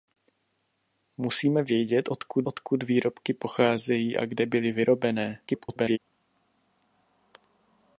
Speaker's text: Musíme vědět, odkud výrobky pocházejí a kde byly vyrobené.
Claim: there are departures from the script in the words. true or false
true